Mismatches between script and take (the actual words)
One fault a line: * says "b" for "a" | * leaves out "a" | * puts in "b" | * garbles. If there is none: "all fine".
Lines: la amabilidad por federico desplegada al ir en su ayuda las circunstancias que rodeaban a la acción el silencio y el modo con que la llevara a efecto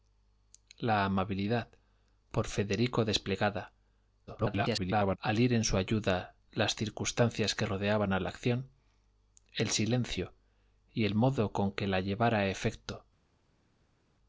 * garbles